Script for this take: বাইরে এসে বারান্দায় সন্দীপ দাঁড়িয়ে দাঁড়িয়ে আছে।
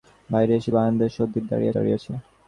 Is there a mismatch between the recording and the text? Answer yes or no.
no